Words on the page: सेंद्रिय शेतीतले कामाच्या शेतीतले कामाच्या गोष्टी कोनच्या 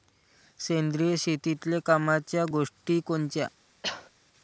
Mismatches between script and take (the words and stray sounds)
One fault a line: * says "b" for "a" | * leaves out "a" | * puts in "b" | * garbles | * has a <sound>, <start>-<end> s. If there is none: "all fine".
* leaves out "शेतीतले कामाच्या"
* has a cough, 3.8-4.1 s